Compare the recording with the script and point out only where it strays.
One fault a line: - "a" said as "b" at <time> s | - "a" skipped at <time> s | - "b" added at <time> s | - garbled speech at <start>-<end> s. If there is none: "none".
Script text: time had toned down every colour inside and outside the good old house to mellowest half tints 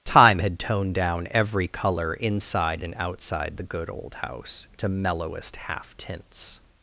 none